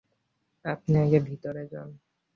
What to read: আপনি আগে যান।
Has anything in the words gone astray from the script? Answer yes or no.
yes